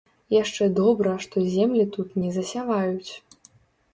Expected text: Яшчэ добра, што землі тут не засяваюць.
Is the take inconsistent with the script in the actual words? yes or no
no